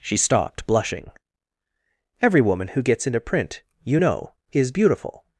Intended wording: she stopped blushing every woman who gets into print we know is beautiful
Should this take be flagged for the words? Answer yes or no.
yes